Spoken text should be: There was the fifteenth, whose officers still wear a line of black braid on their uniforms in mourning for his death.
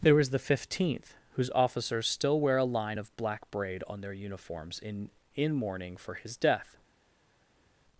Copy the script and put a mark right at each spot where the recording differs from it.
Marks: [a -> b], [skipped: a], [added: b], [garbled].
There was the fifteenth, whose officers still wear a line of black braid on their uniforms in [added: in] mourning for his death.